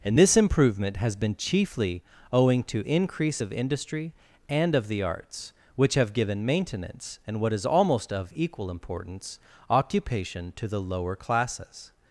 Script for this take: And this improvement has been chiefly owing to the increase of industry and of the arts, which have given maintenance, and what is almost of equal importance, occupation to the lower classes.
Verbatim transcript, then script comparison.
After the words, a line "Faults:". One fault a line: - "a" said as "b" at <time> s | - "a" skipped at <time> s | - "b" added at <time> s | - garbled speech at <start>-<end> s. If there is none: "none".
And this improvement has been chiefly owing to increase of industry and of the arts, which have given maintenance, and what is almost of equal importance, occupation to the lower classes.
Faults:
- "the" skipped at 2.9 s